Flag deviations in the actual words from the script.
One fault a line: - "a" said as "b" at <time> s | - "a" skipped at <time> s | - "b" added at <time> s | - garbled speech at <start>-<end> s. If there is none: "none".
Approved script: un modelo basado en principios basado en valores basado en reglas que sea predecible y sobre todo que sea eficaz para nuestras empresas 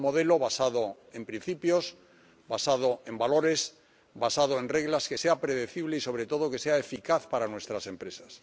none